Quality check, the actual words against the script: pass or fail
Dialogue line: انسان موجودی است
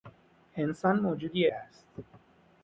pass